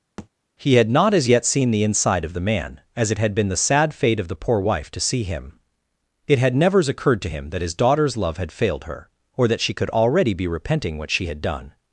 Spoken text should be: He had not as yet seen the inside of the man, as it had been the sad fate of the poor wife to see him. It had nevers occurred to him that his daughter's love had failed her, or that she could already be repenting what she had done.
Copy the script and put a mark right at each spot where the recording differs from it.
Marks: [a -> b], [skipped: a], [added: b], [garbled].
He had not as yet seen the inside of the man, as it had been the sad fate of the poor wife to see him. It had nevers occurred to him that his daughter's love had failed her, or that she could already be repenting what she had done.